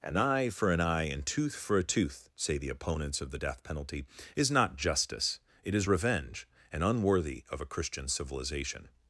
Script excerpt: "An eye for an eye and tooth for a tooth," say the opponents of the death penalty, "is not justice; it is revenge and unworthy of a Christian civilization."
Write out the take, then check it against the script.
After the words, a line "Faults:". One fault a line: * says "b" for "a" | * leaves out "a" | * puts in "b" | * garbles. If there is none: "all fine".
"An eye for an eye and tooth for a tooth," say the opponents of the death penalty, "is not justice; it is revenge and unworthy of a Christian civilization."
Faults:
all fine